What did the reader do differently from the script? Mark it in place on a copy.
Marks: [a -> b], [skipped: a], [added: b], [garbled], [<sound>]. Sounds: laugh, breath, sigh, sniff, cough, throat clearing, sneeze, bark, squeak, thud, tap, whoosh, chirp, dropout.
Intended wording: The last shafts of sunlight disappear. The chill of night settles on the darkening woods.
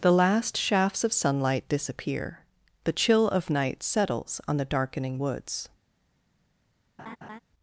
The last shafts of sunlight disappear. The chill of night settles on the darkening woods. [laugh]